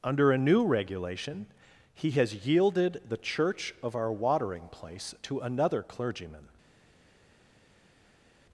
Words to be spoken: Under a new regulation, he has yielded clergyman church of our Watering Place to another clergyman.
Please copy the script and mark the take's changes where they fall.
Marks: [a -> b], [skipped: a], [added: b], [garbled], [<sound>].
Under a new regulation, he has yielded [clergyman -> the] church of our Watering Place to another clergyman.